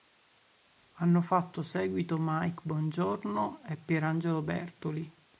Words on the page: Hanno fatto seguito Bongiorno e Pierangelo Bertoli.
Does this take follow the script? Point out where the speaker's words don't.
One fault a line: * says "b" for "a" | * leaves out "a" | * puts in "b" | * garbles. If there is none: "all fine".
* puts in "Mike"